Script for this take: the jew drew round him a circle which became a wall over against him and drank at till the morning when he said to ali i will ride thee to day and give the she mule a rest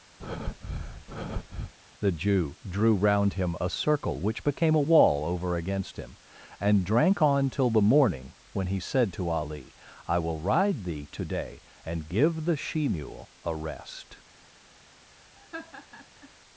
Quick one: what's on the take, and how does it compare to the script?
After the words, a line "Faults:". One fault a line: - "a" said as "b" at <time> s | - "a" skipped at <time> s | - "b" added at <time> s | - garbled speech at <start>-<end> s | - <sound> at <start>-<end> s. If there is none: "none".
the jew drew round him a circle which became a wall over against him and drank on till the morning when he said to ali i will ride thee to day and give the she mule a rest
Faults:
- breath at 0.2-1.7 s
- "at" said as "on" at 7.2 s
- laugh at 15.4-16.3 s